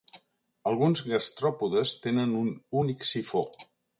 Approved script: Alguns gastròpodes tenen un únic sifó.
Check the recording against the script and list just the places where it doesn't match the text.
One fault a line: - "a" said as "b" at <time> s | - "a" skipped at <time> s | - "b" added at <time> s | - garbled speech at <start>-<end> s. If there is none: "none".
none